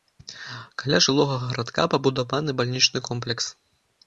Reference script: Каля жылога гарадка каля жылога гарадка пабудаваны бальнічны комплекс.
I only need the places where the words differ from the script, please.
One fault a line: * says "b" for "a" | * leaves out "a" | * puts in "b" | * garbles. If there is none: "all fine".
* leaves out "каля жылога гарадка"